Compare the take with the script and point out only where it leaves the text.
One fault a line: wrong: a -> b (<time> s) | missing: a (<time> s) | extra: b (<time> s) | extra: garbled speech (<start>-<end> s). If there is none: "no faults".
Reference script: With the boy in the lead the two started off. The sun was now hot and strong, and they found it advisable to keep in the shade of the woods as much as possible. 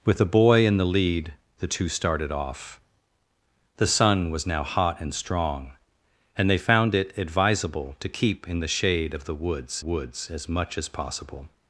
extra: woods (9.8 s)